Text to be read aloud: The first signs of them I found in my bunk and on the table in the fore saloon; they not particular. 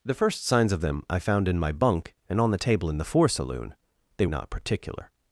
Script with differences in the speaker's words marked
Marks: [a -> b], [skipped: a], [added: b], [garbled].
The first signs of them I found in my bunk and on the table in the fore saloon; they not particular.